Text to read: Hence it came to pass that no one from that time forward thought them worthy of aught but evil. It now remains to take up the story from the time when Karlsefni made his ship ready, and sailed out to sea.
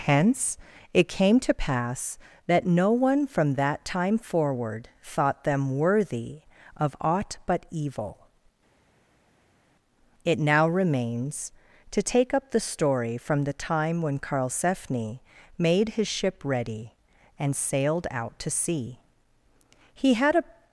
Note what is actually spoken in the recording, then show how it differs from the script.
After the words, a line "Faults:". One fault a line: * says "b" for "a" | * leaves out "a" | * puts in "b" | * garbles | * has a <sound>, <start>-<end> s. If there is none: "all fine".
Hence it came to pass that no one from that time forward thought them worthy of aught but evil. It now remains to take up the story from the time when Karlsefni made his ship ready, and sailed out to sea. He had a
Faults:
* puts in "He had a"